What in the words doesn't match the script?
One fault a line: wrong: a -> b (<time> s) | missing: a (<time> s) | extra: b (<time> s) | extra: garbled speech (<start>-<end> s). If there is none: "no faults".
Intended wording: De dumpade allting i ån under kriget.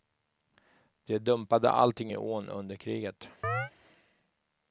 no faults